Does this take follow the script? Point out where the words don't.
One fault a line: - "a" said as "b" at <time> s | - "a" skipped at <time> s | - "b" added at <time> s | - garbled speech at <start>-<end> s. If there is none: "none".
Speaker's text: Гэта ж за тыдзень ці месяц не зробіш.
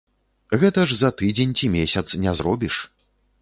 none